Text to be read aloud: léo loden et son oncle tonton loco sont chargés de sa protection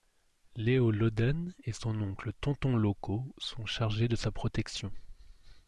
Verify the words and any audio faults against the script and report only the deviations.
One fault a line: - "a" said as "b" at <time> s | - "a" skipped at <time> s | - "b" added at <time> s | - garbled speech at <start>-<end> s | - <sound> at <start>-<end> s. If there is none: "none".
none